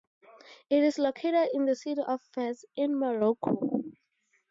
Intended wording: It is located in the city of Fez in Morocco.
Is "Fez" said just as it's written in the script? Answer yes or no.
yes